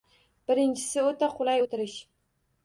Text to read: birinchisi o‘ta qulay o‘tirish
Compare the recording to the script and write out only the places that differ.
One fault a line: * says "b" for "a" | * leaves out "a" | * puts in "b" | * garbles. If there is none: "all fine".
all fine